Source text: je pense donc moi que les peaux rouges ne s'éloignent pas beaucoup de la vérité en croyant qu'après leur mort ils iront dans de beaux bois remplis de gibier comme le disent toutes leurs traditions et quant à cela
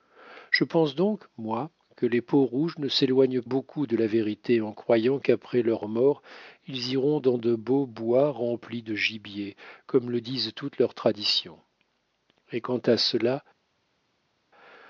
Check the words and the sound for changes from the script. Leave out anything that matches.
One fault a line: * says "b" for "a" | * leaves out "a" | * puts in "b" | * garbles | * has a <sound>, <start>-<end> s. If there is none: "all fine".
* leaves out "pas"